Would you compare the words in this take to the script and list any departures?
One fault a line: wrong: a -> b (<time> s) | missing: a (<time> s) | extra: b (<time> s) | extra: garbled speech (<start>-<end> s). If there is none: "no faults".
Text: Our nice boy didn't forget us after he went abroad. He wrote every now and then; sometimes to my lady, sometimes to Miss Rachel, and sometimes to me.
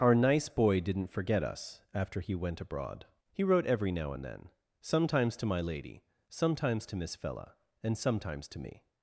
wrong: Rachel -> Fella (7.2 s)